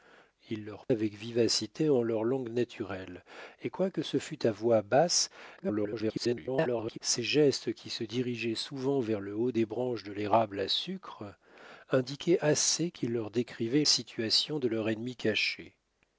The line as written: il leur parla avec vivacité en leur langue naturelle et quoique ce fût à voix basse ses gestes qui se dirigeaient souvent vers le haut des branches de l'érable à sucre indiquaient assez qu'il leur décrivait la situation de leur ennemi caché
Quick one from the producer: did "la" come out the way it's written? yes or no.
no